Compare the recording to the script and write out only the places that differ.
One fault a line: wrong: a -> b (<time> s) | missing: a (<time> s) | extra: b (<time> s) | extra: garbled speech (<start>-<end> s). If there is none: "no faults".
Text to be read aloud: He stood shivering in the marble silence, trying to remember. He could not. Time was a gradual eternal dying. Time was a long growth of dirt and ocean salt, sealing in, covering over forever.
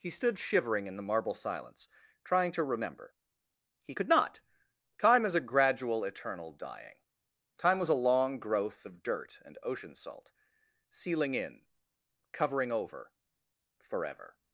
wrong: was -> is (5.2 s)